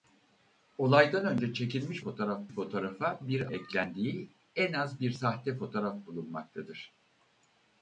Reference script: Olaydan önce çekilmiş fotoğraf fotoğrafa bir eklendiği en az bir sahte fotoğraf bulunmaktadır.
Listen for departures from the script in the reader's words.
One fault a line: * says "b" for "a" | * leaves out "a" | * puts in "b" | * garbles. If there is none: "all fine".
all fine